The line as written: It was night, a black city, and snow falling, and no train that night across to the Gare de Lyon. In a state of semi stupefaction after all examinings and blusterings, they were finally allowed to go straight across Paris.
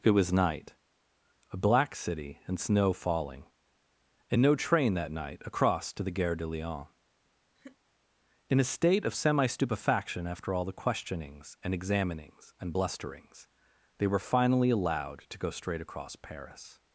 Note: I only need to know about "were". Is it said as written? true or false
true